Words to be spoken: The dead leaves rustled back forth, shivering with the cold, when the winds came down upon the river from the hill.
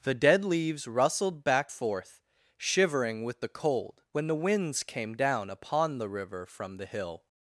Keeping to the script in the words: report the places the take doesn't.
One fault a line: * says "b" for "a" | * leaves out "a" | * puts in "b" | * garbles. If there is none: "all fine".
all fine